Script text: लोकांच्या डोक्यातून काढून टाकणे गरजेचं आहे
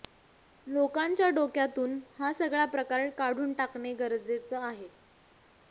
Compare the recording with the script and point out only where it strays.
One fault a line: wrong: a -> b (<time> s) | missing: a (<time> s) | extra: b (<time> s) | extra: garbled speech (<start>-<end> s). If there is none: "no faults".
extra: हा सगळा प्रकार (2.2 s)